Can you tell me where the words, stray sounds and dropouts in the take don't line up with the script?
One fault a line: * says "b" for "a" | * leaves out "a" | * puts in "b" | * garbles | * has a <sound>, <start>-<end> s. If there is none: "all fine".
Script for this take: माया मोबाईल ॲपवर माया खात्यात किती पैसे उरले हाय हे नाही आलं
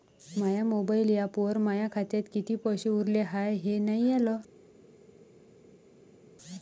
all fine